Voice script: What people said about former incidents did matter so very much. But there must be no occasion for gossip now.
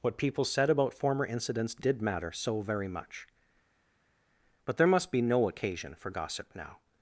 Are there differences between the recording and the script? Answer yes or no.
no